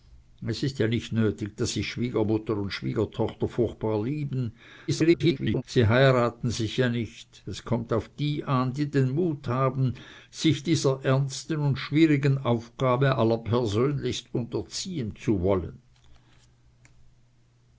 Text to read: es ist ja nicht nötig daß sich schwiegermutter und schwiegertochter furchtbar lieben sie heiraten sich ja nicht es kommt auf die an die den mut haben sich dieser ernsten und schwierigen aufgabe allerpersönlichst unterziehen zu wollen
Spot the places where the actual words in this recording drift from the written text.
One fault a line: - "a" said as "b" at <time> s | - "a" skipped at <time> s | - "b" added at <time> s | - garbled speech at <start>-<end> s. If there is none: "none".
- garbled speech at 4.9-5.6 s